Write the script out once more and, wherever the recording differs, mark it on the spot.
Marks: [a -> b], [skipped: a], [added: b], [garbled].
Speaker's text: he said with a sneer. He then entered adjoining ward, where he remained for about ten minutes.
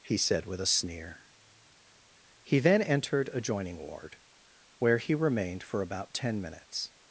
he said with a sneer. He then entered adjoining ward, where he remained for about ten minutes.